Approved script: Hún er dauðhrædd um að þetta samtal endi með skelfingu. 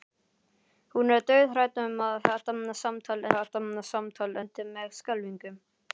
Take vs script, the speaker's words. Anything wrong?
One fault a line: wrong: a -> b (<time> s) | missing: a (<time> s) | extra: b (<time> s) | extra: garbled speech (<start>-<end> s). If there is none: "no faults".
extra: þetta samtal (3.3 s)